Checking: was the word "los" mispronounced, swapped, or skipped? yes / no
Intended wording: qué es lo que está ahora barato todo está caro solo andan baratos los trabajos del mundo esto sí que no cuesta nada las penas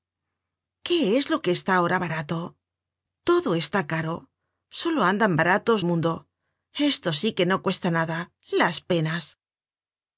yes